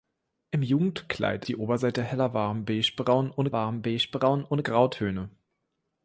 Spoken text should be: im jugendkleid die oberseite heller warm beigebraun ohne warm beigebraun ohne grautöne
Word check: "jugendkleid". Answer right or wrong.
right